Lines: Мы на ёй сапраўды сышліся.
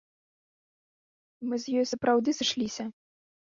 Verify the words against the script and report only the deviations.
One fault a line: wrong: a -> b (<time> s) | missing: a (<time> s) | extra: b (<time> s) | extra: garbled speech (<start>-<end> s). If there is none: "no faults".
wrong: на -> з (1.7 s)